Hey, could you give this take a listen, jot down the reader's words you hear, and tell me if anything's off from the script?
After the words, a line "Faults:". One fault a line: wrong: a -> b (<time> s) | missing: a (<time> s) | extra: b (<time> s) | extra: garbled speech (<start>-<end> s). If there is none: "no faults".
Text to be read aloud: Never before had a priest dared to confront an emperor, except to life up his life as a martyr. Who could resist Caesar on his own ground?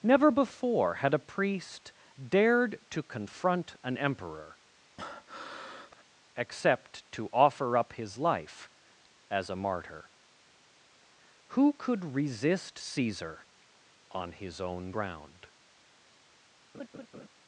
Never before had a priest dared to confront an emperor, except to offer up his life as a martyr. Who could resist Caesar on his own ground?
Faults:
wrong: life -> offer (7.3 s)